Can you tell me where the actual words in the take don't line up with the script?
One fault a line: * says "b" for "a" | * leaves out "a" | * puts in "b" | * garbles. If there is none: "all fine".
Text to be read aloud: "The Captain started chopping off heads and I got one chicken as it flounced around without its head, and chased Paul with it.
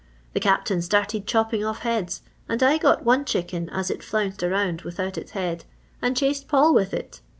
all fine